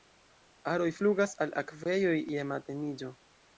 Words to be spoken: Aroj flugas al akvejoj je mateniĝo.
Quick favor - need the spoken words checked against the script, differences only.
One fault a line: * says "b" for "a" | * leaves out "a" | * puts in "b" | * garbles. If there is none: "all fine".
all fine